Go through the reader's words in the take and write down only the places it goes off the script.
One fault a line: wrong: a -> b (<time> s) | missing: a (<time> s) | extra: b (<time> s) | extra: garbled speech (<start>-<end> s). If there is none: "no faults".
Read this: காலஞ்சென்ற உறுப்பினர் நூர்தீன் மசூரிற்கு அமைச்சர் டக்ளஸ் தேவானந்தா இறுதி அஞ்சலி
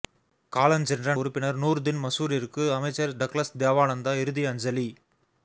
no faults